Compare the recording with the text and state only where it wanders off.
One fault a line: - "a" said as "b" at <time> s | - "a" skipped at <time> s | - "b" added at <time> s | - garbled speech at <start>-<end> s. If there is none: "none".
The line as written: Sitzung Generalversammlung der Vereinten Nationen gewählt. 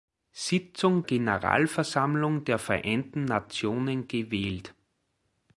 none